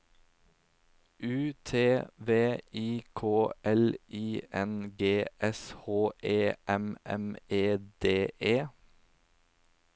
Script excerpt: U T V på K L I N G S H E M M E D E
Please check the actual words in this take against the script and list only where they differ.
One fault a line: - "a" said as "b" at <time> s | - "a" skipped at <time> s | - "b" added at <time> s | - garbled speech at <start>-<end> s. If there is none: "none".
- "på" said as "I" at 2.7 s